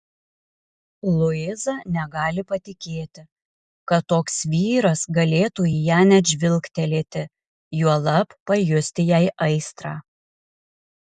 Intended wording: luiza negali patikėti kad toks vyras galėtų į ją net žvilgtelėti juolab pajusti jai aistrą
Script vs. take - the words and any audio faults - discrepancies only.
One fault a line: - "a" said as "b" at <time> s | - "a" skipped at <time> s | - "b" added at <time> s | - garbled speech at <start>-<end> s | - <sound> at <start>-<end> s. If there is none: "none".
none